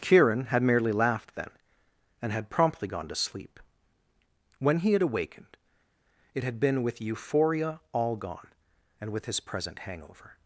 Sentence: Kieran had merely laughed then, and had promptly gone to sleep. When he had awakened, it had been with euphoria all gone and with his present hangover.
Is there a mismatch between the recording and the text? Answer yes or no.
no